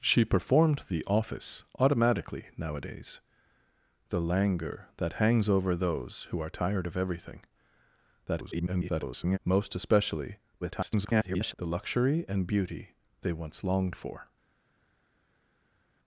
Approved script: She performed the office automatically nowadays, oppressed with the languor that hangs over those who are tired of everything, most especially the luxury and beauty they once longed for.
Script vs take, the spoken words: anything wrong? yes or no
yes